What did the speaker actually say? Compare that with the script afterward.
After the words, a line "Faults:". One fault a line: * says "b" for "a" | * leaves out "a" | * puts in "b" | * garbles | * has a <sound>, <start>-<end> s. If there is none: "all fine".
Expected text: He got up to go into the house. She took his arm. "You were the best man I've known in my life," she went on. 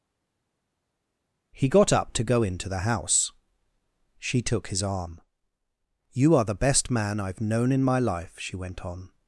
He got up to go into the house. She took his arm. "You are the best man I've known in my life," she went on.
Faults:
* says "are" for "were"